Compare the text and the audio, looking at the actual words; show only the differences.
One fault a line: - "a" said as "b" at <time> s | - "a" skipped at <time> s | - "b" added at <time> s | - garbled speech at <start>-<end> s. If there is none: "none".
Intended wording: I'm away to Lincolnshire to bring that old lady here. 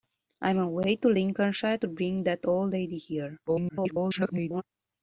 - garbled speech at 3.5-4.6 s